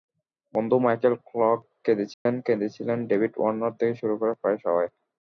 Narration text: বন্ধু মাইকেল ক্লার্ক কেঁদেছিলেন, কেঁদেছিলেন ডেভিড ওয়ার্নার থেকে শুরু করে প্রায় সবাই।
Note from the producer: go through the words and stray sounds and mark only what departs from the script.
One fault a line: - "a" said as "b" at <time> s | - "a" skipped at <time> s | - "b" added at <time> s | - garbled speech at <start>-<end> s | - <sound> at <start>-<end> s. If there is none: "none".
- dropout at 2.1-2.3 s